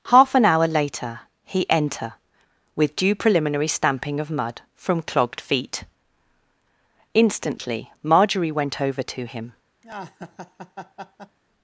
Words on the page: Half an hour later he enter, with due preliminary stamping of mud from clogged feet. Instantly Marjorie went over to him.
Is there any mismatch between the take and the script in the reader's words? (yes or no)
no